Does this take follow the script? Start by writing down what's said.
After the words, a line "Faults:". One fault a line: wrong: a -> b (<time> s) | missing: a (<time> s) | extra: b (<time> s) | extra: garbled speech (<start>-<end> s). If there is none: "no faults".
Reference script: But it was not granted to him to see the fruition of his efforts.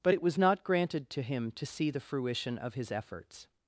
But it was not granted to him to see the fruition of his efforts.
Faults:
no faults